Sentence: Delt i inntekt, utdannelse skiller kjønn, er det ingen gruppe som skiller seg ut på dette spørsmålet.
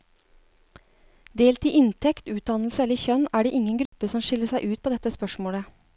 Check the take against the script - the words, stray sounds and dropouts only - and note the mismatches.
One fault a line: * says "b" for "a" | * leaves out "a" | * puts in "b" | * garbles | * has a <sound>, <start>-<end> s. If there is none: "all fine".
* says "eller" for "skiller"
* has a dropout, 3.9-3.9 s